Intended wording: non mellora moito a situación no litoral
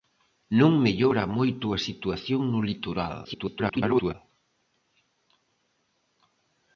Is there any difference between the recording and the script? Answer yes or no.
yes